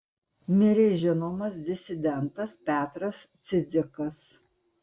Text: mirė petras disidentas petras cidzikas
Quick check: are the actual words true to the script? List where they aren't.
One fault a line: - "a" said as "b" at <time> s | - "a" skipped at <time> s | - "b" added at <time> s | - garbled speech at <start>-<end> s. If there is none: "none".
- "petras" said as "žinomas" at 1.0 s